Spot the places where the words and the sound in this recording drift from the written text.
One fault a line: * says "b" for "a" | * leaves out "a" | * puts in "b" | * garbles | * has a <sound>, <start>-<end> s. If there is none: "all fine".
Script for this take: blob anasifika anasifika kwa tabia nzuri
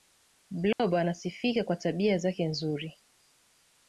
* has a dropout, 0.7-0.8 s
* leaves out "anasifika"
* puts in "zake"